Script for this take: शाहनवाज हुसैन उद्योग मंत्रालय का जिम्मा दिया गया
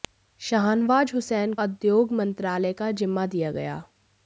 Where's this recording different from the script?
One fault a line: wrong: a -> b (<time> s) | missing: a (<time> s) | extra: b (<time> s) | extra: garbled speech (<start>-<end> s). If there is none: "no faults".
no faults